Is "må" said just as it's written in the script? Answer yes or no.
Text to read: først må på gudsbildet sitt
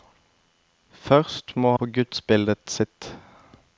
yes